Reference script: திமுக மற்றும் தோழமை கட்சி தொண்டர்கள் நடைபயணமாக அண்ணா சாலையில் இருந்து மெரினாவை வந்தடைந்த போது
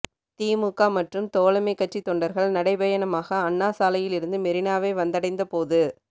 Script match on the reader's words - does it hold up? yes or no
yes